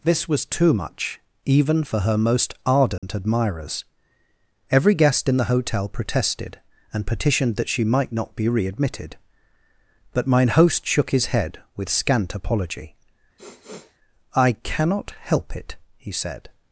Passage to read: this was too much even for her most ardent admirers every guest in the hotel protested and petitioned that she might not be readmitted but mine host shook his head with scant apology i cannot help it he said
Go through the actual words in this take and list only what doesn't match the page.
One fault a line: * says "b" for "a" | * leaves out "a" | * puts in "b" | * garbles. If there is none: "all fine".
all fine